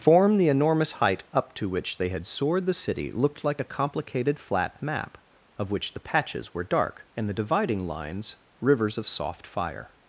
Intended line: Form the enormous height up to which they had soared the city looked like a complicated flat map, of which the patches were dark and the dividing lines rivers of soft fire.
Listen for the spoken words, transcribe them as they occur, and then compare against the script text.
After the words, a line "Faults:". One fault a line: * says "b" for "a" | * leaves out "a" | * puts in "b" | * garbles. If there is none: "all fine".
Form the enormous height up to which they had soared the city looked like a complicated flat map, of which the patches were dark and the dividing lines rivers of soft fire.
Faults:
all fine